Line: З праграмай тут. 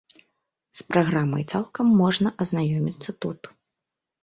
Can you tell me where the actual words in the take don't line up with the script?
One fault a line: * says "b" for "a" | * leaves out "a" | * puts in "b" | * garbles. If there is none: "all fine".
* puts in "цалкам можна азнаёміцца"